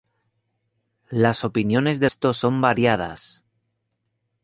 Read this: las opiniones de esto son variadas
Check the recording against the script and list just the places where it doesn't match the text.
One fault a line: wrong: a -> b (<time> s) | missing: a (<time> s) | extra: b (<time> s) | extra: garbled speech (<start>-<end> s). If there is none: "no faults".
no faults